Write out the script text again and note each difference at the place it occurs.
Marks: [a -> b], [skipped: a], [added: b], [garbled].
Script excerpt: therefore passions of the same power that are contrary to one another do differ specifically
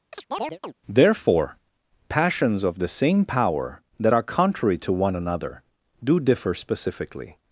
therefore passions of the same power that are contrary to one another do differ specifically